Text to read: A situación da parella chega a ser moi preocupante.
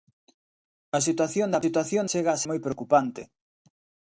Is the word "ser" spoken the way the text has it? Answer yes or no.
no